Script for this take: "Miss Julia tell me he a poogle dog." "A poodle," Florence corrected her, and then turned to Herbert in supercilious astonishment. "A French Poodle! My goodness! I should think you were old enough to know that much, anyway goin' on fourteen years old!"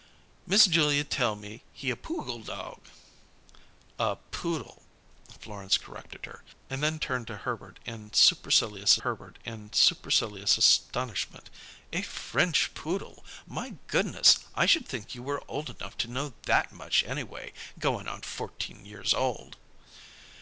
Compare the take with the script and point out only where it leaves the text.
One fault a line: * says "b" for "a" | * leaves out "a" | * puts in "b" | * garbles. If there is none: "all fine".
* puts in "Herbert in supercilious"